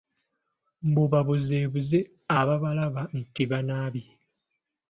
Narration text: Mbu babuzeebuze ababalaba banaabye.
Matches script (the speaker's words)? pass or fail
fail